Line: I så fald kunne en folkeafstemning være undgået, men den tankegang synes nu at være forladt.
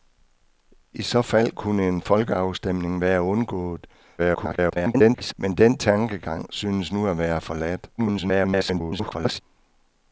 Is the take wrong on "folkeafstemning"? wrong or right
right